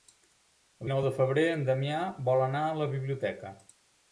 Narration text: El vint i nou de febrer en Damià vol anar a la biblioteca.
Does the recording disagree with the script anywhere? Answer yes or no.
yes